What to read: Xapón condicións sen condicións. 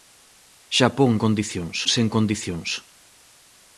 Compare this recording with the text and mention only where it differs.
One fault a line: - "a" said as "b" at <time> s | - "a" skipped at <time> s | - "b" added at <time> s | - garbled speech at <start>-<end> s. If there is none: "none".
none